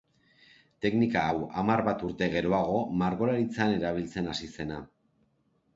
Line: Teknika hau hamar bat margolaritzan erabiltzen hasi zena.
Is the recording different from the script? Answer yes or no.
yes